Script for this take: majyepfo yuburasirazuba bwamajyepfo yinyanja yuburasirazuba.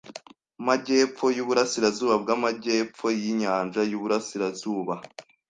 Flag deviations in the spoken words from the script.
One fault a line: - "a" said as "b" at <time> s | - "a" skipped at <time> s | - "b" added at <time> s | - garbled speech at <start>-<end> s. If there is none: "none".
none